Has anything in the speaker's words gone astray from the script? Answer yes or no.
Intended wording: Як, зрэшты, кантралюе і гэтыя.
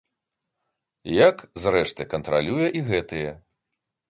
no